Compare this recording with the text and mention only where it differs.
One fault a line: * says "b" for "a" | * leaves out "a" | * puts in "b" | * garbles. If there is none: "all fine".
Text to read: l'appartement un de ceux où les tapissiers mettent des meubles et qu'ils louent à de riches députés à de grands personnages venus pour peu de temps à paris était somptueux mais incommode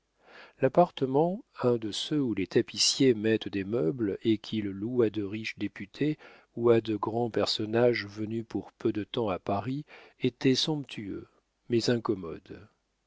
* puts in "ou"